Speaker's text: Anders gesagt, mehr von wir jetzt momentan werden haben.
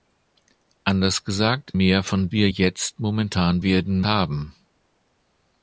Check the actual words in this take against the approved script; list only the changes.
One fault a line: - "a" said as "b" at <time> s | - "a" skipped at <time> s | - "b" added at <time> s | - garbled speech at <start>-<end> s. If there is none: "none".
none